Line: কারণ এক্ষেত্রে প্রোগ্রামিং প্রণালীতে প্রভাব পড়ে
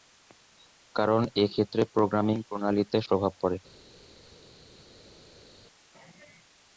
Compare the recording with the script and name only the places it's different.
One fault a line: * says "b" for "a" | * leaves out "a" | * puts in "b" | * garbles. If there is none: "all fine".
all fine